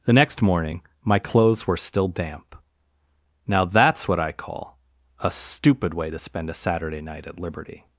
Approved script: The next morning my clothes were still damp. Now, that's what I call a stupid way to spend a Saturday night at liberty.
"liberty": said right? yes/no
yes